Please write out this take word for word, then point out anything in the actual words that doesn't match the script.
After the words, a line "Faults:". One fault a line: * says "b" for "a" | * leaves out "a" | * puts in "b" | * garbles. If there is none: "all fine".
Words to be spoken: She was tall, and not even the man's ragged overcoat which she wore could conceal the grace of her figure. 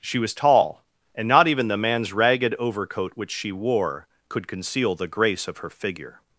She was tall, and not even the man's ragged overcoat which she wore could conceal the grace of her figure.
Faults:
all fine